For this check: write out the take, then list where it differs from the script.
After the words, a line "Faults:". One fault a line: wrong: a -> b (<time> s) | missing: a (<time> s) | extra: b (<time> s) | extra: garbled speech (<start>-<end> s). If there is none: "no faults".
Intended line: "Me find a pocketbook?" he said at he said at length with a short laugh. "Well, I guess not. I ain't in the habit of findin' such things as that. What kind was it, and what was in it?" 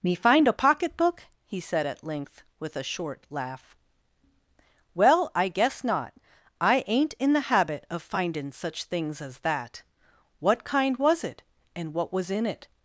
"Me find a pocketbook?" he said at length with a short laugh. "Well, I guess not. I ain't in the habit of findin' such things as that. What kind was it, and what was in it?"
Faults:
missing: he said at (2.0 s)